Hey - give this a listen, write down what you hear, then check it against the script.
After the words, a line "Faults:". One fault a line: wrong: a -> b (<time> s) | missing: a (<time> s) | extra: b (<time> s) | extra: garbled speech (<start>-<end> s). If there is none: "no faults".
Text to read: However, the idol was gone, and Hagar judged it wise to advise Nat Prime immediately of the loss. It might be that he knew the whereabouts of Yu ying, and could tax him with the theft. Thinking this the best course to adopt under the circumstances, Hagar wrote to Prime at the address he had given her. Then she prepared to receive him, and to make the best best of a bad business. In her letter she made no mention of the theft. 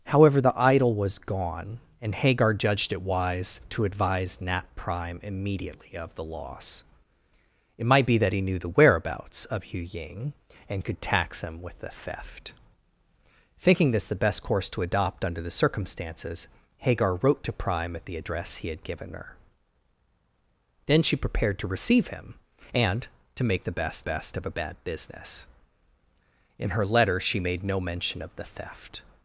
However, the idol was gone, and Hagar judged it wise to advise Nat Prime immediately of the loss. It might be that he knew the whereabouts of Yu ying, and could tax him with the theft. Thinking this the best course to adopt under the circumstances, Hagar wrote to Prime at the address he had given her. Then she prepared to receive him, and to make the best best of a bad business. In her letter she made no mention of the theft.
Faults:
no faults